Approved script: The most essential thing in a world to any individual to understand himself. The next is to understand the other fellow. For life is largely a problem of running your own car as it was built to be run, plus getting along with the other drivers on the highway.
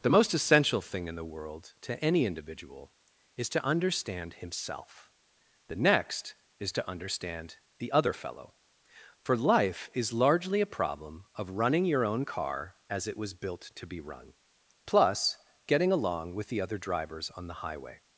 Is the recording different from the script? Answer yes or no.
yes